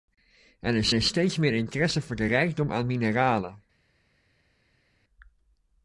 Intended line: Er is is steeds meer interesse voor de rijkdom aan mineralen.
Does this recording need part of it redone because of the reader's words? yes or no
no